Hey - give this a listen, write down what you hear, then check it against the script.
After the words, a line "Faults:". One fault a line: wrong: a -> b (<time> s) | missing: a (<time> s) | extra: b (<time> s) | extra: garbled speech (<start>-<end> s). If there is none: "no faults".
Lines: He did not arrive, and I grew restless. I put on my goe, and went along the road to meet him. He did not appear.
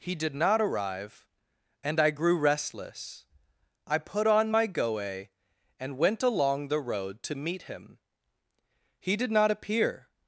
He did not arrive, and I grew restless. I put on my goe, and went along the road to meet him. He did not appear.
Faults:
no faults